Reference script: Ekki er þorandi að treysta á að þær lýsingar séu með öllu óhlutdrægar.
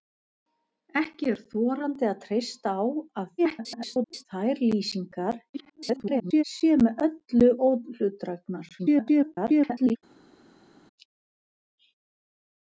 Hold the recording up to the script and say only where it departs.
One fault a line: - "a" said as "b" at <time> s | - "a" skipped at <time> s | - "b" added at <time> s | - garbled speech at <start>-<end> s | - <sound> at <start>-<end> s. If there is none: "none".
- garbled speech at 3.4-4.3 s
- garbled speech at 5.5-6.4 s
- garbled speech at 8.8-10.0 s